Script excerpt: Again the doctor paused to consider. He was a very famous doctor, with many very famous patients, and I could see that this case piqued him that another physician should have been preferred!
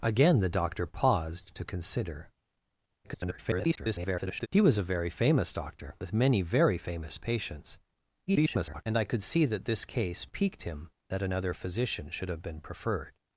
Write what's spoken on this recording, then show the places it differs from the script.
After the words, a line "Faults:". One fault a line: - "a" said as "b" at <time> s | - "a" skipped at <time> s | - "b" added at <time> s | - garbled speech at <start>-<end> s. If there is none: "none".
Again the doctor paused to consider. [garbled] He was a very famous doctor, with many very famous patients, [garbled] and I could see that this case piqued him that another physician should have been preferred!
Faults:
- garbled speech at 3.0-4.5 s
- garbled speech at 8.3-8.8 s